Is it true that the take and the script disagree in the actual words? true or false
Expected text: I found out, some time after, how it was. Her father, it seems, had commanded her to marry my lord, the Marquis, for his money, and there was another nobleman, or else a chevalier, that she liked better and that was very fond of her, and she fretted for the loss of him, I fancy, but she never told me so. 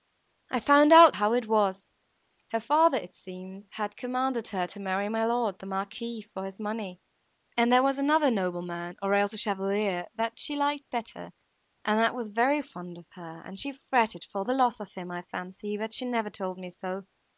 true